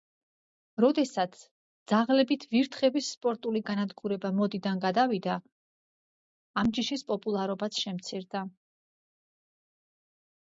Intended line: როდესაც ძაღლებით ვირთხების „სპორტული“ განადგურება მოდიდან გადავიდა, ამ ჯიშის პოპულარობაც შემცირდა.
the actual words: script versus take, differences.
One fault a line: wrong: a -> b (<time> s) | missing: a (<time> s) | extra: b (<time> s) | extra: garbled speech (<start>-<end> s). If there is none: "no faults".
no faults